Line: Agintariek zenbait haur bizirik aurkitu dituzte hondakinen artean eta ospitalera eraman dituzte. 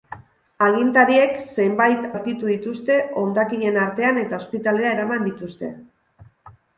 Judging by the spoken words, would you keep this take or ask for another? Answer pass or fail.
fail